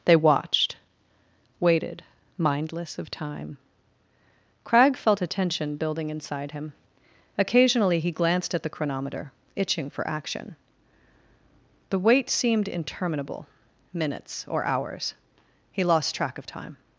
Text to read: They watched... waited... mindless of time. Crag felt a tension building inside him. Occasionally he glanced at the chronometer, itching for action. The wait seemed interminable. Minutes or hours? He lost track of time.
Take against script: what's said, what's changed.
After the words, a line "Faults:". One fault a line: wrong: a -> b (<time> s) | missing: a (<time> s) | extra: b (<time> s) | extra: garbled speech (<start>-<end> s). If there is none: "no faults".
They watched... waited... mindless of time. Crag felt a tension building inside him. Occasionally he glanced at the chronometer, itching for action. The wait seemed interminable. Minutes or hours? He lost track of time.
Faults:
no faults